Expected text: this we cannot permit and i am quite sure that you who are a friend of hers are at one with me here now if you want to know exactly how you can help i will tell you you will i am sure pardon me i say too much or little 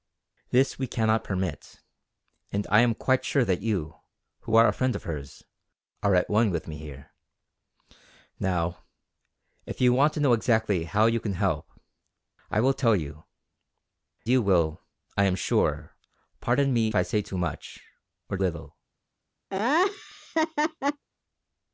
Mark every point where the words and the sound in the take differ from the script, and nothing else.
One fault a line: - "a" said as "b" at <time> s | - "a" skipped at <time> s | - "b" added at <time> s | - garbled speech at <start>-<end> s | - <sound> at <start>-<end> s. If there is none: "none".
- laugh at 19.5-21.0 s